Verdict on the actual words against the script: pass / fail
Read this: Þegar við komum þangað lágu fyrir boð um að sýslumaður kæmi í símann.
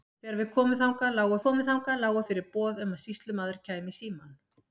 fail